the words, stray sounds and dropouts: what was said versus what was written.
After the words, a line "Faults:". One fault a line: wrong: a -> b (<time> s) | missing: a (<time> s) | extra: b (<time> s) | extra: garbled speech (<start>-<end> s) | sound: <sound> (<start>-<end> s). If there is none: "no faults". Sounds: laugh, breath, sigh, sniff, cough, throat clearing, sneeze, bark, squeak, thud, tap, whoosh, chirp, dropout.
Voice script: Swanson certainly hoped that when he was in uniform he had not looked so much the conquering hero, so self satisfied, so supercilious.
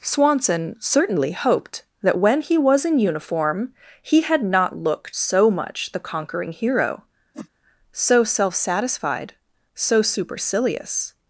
Swanson certainly hoped that when he was in uniform he had not looked so much the conquering hero, so self satisfied, so supercilious.
Faults:
sound: whoosh (7.3-7.5 s)